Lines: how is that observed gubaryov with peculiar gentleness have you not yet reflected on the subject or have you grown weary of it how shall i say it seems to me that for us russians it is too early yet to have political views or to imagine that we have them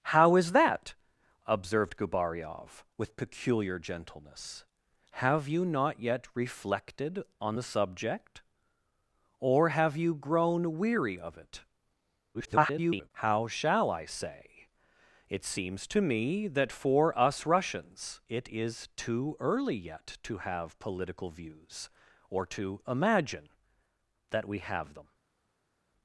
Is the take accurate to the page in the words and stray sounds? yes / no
no